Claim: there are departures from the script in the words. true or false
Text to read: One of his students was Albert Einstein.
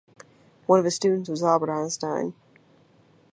false